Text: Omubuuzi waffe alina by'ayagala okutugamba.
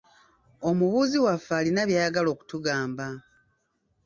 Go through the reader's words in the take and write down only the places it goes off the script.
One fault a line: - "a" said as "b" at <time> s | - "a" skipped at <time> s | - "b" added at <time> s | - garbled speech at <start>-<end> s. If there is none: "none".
none